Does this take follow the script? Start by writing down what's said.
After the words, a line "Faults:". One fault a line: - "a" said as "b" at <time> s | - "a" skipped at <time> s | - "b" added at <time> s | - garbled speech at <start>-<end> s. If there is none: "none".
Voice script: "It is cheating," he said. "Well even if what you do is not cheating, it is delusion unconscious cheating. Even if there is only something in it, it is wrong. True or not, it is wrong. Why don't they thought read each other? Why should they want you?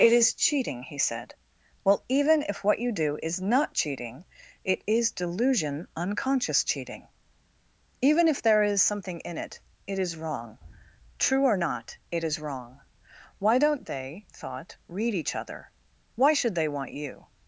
"It is cheating," he said. "Well even if what you do is not cheating, it is delusion unconscious cheating. Even if there is something in it, it is wrong. True or not, it is wrong. Why don't they thought read each other? Why should they want you?
Faults:
- "only" skipped at 8.8 s